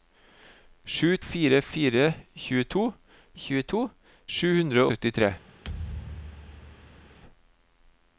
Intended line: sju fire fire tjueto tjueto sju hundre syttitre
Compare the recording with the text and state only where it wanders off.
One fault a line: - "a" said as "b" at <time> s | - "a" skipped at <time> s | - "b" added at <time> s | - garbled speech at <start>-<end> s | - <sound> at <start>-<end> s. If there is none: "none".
- thud at 5.6-7.2 s